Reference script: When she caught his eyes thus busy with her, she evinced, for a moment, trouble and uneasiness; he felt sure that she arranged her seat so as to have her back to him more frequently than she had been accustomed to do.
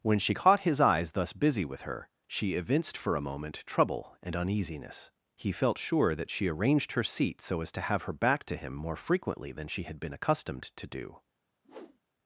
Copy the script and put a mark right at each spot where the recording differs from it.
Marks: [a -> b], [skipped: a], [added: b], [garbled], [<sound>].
When she caught his eyes thus busy with her, she evinced, for a moment, trouble and uneasiness; he felt sure that she arranged her seat so as to have her back to him more frequently than she had been accustomed to do. [whoosh]